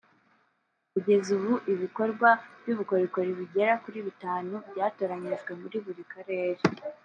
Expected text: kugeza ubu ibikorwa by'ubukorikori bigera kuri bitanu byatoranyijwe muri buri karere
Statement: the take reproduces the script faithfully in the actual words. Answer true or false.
true